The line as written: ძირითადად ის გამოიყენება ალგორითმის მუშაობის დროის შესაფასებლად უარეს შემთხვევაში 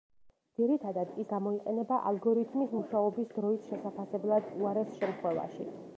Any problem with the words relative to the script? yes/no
no